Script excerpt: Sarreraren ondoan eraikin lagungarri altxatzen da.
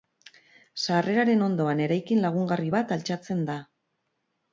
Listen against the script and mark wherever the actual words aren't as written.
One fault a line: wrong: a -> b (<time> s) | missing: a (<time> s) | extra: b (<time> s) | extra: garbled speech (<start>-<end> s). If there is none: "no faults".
extra: bat (2.8 s)